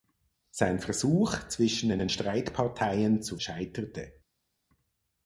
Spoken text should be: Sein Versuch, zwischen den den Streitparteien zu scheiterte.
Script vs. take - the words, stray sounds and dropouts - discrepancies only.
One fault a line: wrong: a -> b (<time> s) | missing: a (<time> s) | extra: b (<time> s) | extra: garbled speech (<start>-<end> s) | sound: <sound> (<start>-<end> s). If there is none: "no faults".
no faults